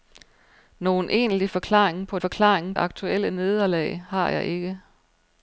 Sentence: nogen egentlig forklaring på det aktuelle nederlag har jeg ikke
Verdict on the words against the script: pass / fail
fail